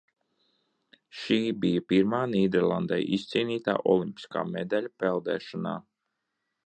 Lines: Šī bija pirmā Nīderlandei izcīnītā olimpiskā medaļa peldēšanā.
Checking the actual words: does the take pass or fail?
pass